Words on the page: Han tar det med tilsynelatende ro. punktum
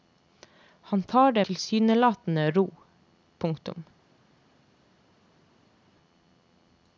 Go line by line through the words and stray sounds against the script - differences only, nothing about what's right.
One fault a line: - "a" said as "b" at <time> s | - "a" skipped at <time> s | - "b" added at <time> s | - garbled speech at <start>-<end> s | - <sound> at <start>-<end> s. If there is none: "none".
- "med" skipped at 1.5 s